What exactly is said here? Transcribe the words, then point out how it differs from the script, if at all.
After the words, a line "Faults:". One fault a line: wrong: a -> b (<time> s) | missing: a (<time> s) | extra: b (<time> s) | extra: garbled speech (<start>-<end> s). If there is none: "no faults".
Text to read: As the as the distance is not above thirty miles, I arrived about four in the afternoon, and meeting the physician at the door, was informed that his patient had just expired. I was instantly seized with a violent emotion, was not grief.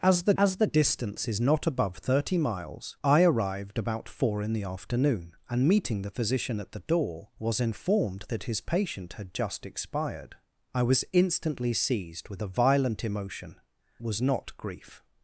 As the as the distance is not above thirty miles, I arrived about four in the afternoon, and meeting the physician at the door, was informed that his patient had just expired. I was instantly seized with a violent emotion, was not grief.
Faults:
no faults